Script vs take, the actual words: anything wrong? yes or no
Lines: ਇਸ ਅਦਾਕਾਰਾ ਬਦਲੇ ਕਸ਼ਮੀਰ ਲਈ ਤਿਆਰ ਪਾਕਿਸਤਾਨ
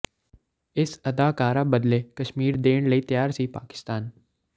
yes